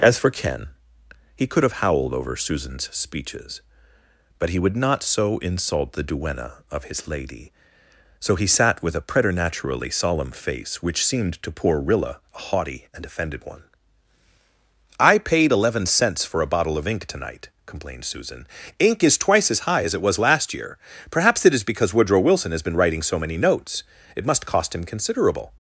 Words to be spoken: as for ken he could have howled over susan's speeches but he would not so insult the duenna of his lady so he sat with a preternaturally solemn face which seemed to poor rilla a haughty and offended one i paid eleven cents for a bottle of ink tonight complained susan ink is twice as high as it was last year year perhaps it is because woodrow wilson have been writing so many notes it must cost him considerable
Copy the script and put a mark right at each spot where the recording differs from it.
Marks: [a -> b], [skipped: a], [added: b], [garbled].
as for ken he could have howled over susan's speeches but he would not so insult the duenna of his lady so he sat with a preternaturally solemn face which seemed to poor rilla a haughty and offended one i paid eleven cents for a bottle of ink tonight complained susan ink is twice as high as it was last year [skipped: year] perhaps it is because woodrow wilson [have -> has] been writing so many notes it must cost him considerable